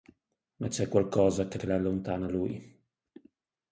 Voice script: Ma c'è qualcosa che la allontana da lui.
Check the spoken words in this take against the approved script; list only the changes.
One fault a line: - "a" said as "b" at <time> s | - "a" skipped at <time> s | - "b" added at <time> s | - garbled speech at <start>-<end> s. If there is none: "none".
- "che" added at 1.5 s
- "da" skipped at 2.3 s